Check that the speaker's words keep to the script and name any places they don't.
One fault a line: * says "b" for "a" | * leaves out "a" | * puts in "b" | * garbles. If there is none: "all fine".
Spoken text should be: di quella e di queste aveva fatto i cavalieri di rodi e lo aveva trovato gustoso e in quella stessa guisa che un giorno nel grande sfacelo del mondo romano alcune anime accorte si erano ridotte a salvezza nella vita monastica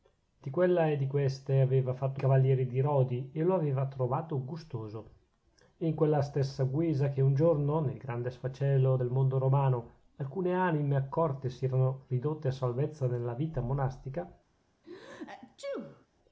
all fine